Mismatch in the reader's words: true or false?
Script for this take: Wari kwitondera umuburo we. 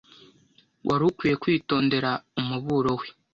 true